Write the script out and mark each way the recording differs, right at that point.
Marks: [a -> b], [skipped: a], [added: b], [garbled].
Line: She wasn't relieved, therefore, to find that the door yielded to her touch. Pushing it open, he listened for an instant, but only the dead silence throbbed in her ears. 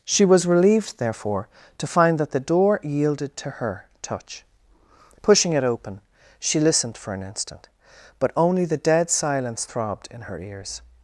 She [wasn't -> was] relieved, therefore, to find that the door yielded to her touch. Pushing it open, [he -> she] listened for an instant, but only the dead silence throbbed in her ears.